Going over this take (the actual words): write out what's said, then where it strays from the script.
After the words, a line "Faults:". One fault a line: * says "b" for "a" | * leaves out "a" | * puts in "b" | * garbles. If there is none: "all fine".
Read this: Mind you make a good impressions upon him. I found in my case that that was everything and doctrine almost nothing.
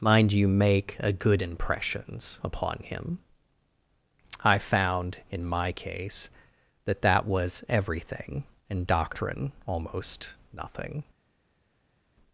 Mind you make a good impressions upon him. I found in my case that that was everything and doctrine almost nothing.
Faults:
all fine